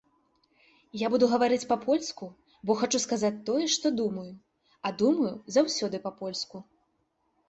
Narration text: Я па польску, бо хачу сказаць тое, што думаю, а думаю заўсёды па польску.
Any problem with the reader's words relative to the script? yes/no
yes